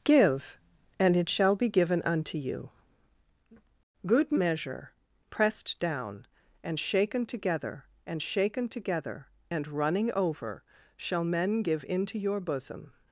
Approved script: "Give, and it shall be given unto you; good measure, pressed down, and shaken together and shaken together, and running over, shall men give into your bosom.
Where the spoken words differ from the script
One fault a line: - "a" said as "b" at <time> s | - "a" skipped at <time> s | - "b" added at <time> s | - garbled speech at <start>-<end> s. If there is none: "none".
none